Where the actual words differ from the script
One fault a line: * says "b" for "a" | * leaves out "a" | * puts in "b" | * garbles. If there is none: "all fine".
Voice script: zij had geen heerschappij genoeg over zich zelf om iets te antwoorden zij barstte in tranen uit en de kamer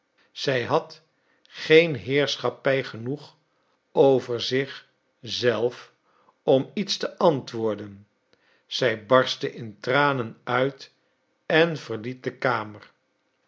* puts in "verliet"